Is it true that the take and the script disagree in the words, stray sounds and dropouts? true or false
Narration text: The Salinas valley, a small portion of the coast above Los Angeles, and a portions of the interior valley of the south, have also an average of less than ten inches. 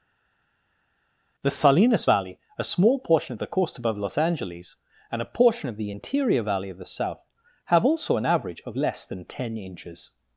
true